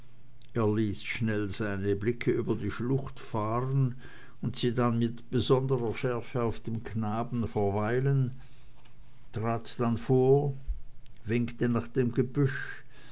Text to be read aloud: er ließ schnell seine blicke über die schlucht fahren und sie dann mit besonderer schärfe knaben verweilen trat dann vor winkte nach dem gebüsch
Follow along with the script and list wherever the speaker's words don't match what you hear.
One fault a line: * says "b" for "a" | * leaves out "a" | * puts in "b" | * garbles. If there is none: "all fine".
* puts in "auf dem"